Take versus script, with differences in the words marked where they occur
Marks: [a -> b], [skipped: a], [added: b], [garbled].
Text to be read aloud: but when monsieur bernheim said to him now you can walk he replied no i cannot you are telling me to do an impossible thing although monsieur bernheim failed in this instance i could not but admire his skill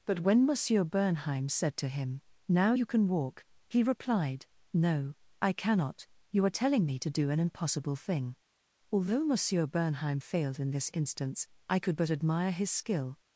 but when monsieur bernheim said to him now you can walk he replied no i cannot you are telling me to do an impossible thing although monsieur bernheim failed in this instance i could [skipped: not] but admire his skill